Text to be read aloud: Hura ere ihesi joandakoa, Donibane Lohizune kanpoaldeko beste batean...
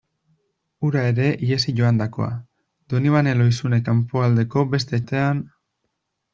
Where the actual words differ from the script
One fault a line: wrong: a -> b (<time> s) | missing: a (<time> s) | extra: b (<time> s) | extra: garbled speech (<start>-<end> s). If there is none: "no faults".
no faults